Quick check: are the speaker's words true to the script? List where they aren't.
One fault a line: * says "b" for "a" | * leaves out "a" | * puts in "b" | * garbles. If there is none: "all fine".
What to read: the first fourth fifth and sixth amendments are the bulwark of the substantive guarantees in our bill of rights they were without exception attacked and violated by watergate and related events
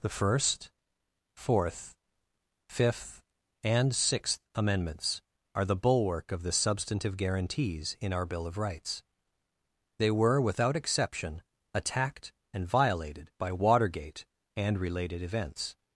all fine